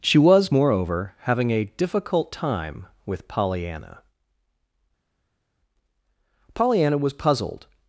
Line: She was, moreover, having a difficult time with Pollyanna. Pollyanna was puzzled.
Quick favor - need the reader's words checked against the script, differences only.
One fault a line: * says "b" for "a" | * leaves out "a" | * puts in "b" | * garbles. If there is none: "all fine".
all fine